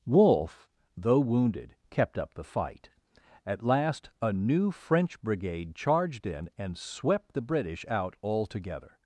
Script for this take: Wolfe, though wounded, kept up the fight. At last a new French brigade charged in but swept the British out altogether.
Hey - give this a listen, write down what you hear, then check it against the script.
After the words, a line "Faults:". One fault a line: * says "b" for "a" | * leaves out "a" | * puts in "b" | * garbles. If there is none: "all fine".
Wolfe, though wounded, kept up the fight. At last a new French brigade charged in and swept the British out altogether.
Faults:
* says "and" for "but"